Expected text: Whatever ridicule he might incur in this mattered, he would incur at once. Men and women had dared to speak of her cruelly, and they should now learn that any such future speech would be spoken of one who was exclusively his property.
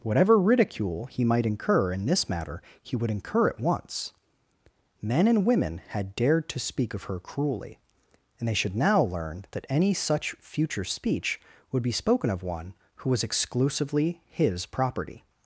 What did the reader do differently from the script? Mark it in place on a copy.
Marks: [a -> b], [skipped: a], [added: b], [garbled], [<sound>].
Whatever ridicule he might incur in this [mattered, -> matter] he would incur at once. Men and women had dared to speak of her cruelly, and they should now learn that any such future speech would be spoken of one who was exclusively his property.